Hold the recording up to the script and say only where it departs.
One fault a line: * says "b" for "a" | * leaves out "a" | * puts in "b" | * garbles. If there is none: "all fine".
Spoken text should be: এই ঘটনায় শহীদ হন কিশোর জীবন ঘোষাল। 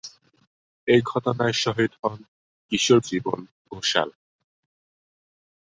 all fine